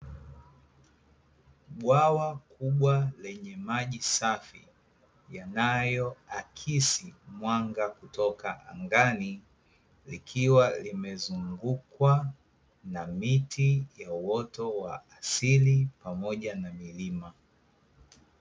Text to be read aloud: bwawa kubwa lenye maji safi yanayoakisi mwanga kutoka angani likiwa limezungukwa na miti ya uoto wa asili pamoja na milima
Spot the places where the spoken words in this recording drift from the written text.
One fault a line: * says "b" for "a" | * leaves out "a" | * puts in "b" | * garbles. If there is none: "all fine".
all fine